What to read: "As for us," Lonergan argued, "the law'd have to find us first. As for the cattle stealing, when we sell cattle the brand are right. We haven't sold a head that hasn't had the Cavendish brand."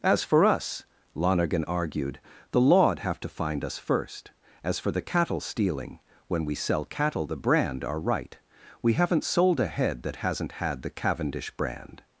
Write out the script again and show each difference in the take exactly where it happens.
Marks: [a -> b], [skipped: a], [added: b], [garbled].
"As for us," Lonergan argued, "the law'd have to find us first. As for the cattle stealing, when we sell cattle the brand are right. We haven't sold a head that hasn't had the Cavendish brand."